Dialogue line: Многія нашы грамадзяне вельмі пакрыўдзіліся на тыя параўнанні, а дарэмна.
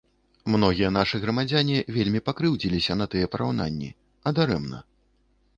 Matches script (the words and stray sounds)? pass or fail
pass